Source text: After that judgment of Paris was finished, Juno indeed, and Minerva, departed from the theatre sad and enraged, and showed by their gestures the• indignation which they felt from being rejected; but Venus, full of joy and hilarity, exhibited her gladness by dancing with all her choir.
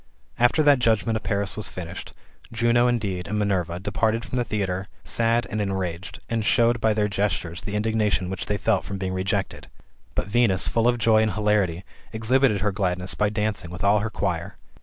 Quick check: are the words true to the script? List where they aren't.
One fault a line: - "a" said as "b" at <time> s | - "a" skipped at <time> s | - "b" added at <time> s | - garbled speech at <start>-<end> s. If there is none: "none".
none